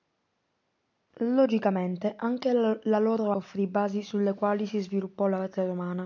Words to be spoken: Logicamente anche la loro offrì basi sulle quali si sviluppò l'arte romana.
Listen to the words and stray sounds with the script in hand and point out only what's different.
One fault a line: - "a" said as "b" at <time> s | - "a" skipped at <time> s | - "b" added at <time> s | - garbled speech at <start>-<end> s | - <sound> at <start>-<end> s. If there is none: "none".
none